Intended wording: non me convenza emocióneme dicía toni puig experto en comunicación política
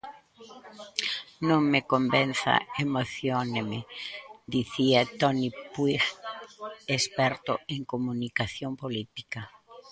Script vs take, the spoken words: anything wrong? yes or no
no